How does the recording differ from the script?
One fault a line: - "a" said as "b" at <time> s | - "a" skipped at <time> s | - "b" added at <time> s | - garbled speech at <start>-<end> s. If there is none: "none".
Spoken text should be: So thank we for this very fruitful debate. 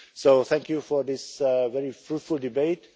- "we" said as "you" at 0.7 s